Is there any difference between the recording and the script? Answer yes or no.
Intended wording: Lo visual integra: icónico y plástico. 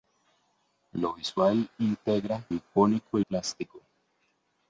no